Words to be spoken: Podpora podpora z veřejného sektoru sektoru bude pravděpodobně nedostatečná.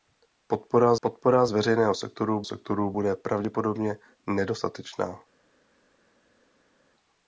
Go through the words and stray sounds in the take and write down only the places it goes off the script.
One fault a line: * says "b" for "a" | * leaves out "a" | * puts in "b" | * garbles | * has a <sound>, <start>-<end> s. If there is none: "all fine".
all fine